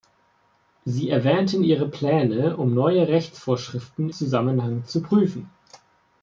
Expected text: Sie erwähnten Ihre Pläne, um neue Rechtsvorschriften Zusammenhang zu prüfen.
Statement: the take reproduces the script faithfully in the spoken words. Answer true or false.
true